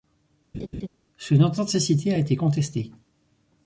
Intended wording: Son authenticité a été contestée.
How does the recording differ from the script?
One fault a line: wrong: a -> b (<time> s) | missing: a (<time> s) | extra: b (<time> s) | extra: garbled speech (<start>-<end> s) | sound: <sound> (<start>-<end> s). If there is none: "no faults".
sound: laugh (0.5-0.9 s)